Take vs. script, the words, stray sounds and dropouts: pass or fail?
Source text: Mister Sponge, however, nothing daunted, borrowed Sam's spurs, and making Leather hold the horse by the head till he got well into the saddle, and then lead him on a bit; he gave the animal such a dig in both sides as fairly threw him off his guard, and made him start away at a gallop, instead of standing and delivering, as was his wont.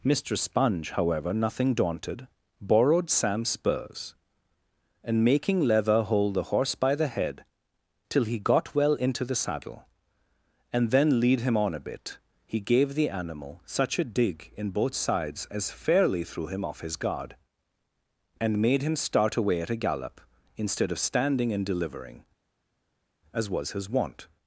pass